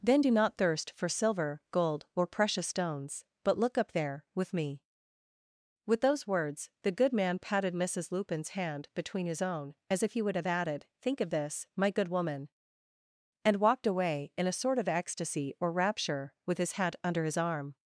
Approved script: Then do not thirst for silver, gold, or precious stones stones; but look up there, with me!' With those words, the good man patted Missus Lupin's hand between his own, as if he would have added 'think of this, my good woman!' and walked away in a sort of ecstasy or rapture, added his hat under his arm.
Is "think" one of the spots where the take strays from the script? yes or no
no